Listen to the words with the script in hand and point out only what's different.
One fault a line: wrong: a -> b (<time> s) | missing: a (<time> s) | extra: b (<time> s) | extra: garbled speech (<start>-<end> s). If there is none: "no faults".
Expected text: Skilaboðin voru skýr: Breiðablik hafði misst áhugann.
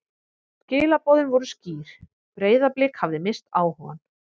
no faults